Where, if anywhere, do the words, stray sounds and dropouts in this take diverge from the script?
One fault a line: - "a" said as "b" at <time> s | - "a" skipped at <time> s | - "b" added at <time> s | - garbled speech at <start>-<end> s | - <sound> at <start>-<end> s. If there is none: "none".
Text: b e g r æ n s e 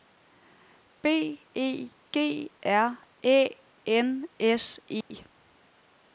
- dropout at 5.0-5.1 s